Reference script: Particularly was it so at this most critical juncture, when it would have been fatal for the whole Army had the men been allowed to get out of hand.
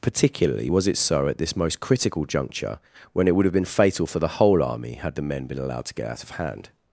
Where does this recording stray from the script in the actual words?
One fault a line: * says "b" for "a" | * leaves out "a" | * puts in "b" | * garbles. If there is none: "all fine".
all fine